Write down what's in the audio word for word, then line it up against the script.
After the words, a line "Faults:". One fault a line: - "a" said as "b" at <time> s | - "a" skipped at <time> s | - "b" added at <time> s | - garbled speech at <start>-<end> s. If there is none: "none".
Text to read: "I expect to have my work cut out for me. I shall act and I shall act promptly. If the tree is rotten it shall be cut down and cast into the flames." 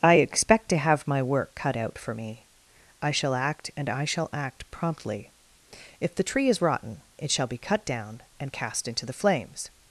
"I expect to have my work cut out for me. I shall act and I shall act promptly. If the tree is rotten it shall be cut down and cast into the flames."
Faults:
none